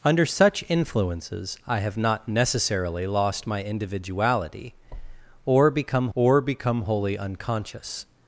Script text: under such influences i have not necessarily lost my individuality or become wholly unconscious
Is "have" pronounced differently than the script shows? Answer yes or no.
no